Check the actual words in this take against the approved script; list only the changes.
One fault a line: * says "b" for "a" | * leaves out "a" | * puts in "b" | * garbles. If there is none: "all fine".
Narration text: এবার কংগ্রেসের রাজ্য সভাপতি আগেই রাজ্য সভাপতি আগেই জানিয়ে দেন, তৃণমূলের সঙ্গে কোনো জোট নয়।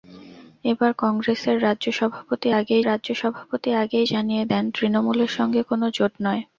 all fine